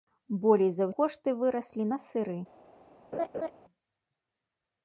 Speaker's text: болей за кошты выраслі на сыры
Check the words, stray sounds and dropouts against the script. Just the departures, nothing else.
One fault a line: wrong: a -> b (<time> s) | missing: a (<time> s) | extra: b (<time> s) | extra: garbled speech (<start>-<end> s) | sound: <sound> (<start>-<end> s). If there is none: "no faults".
sound: laugh (3.1-3.5 s)